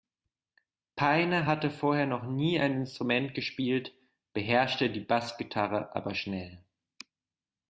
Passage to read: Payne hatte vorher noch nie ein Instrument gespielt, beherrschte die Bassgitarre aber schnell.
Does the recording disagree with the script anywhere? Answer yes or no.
no